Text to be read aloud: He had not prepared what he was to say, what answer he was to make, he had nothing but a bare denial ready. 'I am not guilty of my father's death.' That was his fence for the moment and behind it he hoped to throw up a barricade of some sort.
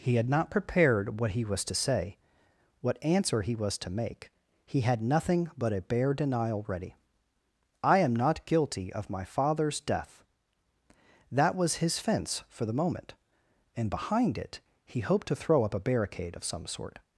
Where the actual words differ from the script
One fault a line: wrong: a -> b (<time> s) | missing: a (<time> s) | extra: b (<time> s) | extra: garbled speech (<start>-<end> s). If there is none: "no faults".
no faults